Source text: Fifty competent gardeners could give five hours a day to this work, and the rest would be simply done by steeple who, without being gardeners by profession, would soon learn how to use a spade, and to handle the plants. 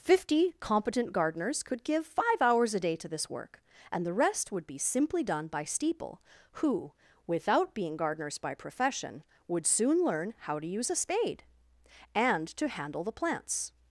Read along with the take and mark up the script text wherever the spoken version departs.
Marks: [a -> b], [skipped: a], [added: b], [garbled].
Fifty competent gardeners could give five hours a day to this work, and the rest would be simply done by steeple who, without being gardeners by profession, would soon learn how to use a spade, and to handle the plants.